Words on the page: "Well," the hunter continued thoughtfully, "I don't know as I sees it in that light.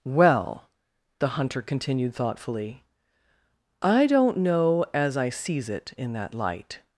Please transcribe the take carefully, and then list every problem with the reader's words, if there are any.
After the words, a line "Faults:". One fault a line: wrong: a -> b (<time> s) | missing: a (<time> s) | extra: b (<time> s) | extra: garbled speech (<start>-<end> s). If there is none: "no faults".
"Well," the hunter continued thoughtfully, "I don't know as I sees it in that light.
Faults:
no faults